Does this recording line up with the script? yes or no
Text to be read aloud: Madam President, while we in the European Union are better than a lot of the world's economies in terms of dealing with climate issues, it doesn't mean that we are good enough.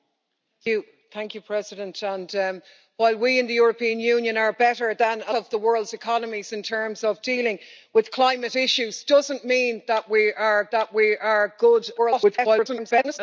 no